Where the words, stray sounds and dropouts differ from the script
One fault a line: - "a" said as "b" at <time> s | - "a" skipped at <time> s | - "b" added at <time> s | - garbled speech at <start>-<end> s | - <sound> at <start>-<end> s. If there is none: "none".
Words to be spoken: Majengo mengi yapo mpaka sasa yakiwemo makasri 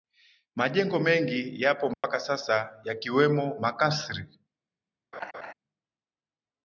- dropout at 1.9-2.0 s
- laugh at 5.1-5.5 s